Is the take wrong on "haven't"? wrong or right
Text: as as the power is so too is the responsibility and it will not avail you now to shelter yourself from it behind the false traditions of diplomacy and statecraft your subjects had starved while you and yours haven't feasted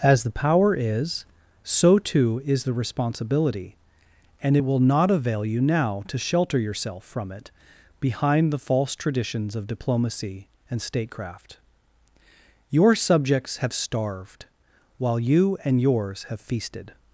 wrong